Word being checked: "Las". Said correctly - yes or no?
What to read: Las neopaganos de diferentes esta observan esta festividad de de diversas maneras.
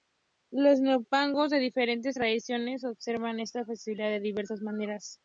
no